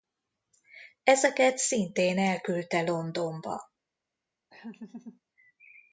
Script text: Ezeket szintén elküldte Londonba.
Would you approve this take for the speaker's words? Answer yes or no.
yes